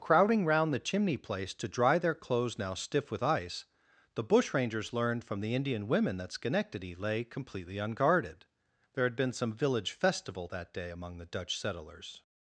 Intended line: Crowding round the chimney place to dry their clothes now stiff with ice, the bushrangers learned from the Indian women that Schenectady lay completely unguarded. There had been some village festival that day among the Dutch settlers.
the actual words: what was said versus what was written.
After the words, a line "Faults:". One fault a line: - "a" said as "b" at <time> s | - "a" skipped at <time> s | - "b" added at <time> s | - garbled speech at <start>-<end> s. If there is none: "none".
Crowding round the chimney place to dry their clothes now stiff with ice, the bushrangers learned from the Indian women that Schenectady lay completely unguarded. There had been some village festival that day among the Dutch settlers.
Faults:
none